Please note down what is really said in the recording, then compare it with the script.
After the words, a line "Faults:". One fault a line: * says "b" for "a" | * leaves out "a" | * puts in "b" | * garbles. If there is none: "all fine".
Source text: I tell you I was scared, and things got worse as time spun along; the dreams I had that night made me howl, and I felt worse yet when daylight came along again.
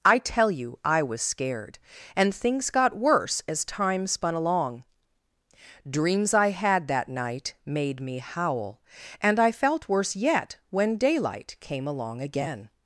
I tell you I was scared, and things got worse as time spun along; dreams I had that night made me howl, and I felt worse yet when daylight came along again.
Faults:
* leaves out "the"